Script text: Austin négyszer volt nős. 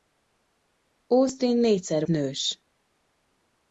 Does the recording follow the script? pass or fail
fail